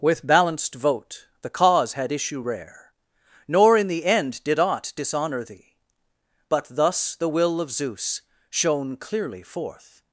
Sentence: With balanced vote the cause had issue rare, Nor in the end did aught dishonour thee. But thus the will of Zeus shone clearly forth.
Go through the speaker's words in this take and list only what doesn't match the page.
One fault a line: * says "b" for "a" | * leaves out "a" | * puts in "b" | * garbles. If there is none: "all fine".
all fine